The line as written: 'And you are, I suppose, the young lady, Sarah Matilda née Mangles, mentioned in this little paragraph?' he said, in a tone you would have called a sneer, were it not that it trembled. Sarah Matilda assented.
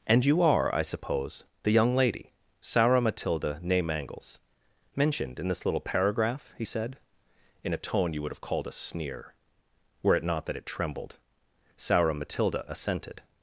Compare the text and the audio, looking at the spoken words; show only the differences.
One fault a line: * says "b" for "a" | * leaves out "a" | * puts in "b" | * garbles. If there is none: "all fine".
all fine